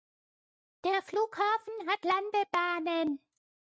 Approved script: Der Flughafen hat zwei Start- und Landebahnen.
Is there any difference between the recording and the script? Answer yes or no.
yes